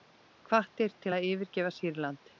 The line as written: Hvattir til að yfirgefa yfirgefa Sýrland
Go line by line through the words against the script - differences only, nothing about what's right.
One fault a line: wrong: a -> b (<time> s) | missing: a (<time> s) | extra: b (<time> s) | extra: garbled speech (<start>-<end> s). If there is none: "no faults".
missing: yfirgefa (1.7 s)